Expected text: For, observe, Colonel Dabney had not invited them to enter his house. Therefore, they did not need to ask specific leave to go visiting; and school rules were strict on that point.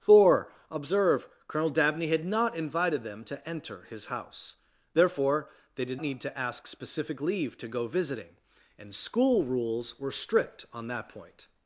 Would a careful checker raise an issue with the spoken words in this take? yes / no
yes